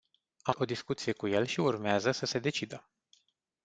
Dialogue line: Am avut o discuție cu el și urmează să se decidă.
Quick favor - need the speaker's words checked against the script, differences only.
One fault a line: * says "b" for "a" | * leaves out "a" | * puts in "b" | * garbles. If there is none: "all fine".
* leaves out "avut"